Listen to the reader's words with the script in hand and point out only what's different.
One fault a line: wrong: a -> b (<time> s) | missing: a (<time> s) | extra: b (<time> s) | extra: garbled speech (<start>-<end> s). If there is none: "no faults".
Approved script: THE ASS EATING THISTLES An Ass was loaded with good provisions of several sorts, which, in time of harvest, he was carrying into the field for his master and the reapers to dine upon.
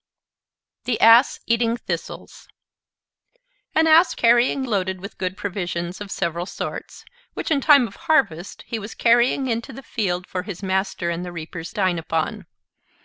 wrong: was -> carrying (4.1 s)
missing: to (11.7 s)